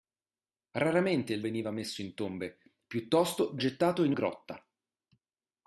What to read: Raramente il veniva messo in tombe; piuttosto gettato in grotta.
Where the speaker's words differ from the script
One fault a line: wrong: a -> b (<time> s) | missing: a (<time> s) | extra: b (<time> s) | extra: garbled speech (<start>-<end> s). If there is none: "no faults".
no faults